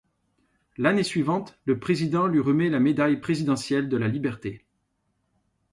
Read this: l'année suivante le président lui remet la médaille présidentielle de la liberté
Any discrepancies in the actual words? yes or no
no